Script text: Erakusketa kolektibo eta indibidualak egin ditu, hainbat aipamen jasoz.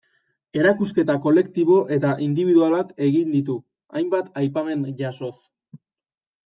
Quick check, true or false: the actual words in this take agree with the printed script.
true